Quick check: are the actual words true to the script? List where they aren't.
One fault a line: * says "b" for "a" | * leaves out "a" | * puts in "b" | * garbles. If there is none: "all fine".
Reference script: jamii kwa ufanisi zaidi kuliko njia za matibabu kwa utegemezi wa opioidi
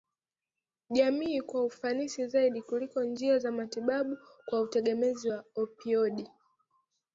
all fine